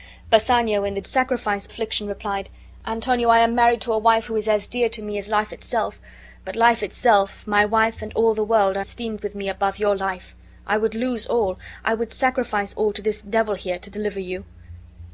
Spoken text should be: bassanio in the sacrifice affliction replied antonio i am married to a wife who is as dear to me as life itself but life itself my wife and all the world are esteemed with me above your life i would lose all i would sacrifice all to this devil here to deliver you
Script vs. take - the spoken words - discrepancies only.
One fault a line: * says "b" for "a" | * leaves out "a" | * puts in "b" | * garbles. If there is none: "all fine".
all fine